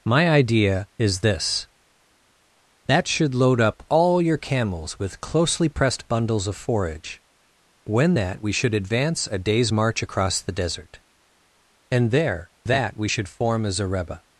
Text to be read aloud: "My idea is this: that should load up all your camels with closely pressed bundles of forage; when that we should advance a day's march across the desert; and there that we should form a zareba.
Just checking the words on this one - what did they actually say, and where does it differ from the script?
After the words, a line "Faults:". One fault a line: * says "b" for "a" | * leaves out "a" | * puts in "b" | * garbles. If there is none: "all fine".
"My idea is this: that should load up all your camels with closely pressed bundles of forage; when that we should advance a day's march across the desert; and there that we should form a zareba.
Faults:
all fine